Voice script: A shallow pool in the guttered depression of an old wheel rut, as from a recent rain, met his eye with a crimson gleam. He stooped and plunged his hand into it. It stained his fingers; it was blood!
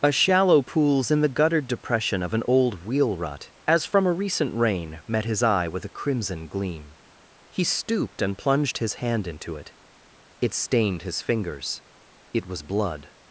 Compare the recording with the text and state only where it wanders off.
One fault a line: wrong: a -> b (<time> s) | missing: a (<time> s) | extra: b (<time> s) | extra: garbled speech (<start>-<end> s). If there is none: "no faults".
wrong: pool -> pools (0.6 s)